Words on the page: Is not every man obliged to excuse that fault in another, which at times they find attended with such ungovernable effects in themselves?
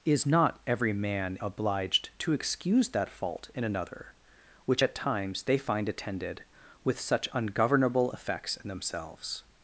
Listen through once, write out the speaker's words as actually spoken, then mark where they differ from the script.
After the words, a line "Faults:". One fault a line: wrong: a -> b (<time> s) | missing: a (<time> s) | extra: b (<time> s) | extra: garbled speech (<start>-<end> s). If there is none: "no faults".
Is not every man obliged to excuse that fault in another, which at times they find attended with such ungovernable effects in themselves?
Faults:
no faults